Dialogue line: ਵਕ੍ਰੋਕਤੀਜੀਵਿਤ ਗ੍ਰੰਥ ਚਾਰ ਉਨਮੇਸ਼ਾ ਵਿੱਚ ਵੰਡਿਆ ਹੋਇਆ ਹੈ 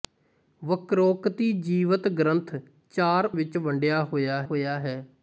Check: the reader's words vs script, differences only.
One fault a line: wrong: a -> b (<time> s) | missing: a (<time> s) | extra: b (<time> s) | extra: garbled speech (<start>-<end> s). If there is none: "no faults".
missing: ਉਨਮੇਸ਼ਾ (3.2 s)
extra: ਹੋਇਆ (4.4 s)